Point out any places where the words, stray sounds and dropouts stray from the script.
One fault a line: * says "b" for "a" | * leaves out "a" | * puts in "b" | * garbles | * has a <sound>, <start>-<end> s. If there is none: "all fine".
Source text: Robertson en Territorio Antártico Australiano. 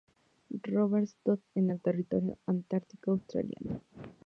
* puts in "el"